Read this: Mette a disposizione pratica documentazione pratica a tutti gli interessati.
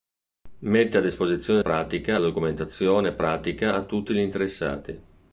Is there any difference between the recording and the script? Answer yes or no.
no